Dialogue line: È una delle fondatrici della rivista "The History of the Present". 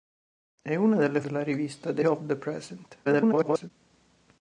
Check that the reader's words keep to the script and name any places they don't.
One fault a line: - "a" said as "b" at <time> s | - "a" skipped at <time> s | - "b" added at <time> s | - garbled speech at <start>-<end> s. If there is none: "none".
- "fondatrici" skipped at 1.2 s
- "History" skipped at 2.0 s
- garbled speech at 3.0-3.7 s